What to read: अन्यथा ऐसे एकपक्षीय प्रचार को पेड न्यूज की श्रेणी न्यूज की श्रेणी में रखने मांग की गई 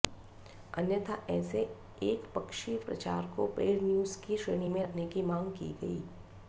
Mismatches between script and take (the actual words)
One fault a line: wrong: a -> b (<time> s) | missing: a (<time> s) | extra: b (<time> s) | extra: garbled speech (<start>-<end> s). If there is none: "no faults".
missing: न्यूज की श्रेणी (4.7 s)
extra: की (5.1 s)